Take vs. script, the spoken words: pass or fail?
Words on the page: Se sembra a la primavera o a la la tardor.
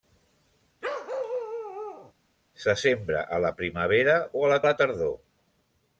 pass